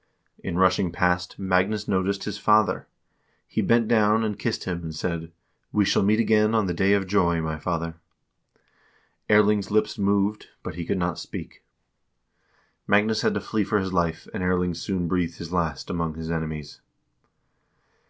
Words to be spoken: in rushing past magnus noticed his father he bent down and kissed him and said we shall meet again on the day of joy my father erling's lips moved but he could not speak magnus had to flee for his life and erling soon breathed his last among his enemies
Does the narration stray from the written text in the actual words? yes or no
no